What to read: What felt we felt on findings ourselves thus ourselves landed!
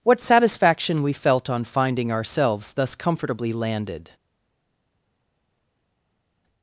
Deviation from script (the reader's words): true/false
true